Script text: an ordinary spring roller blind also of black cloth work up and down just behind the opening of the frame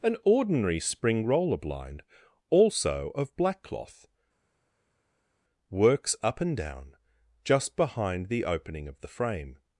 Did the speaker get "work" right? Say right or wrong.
wrong